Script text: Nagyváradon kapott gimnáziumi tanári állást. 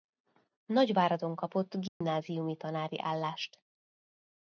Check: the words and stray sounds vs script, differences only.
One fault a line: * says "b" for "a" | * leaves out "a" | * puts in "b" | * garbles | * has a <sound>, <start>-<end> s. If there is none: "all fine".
* has a dropout, 1.9-2.0 s